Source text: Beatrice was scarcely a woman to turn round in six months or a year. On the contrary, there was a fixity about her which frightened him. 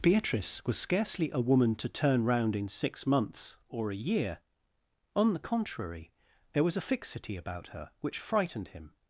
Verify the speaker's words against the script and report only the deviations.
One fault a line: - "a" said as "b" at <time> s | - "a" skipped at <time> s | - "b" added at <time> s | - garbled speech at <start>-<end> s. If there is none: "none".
none